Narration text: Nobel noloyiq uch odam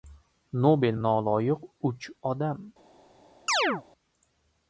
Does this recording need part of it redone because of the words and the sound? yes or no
yes